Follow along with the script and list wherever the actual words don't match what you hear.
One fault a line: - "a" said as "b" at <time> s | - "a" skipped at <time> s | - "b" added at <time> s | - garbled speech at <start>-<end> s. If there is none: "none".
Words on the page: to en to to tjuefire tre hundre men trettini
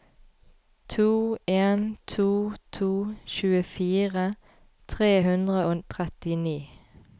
- "men" said as "og" at 5.6 s